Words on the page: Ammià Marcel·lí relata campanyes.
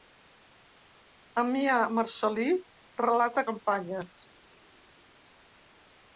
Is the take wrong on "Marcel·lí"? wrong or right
right